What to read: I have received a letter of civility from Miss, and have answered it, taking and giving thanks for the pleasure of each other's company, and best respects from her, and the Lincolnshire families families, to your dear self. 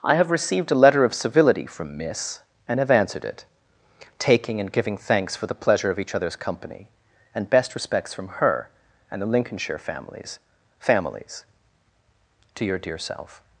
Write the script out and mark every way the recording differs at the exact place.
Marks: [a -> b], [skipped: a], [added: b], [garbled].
I have received a letter of civility from Miss, and have answered it, taking and giving thanks for the pleasure of each other's company, and best respects from her, and the Lincolnshire families families, to your dear self.